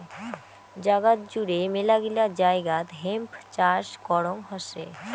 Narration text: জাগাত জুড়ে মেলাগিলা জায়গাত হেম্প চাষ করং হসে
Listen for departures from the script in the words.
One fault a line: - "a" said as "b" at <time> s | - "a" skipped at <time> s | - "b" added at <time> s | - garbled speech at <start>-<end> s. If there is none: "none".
none